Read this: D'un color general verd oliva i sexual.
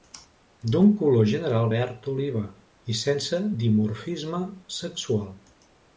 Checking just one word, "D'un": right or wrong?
right